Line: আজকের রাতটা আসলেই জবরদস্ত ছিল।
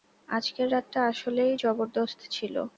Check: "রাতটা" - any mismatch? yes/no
no